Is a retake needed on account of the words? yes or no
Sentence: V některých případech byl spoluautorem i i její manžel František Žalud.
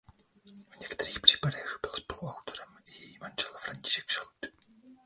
yes